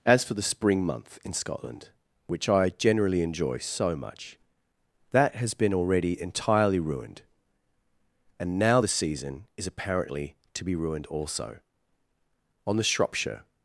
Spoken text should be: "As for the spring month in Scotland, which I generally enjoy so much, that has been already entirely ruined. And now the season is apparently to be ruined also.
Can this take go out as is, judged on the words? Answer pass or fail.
fail